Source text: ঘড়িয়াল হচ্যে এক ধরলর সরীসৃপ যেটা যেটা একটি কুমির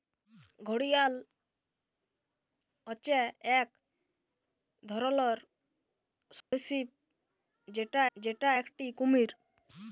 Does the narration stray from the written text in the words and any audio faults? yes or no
yes